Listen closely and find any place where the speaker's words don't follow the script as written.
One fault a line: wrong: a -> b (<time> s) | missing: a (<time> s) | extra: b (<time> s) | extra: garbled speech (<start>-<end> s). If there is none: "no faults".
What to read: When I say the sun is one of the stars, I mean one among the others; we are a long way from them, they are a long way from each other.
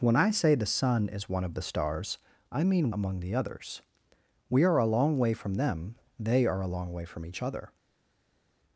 missing: one (3.0 s)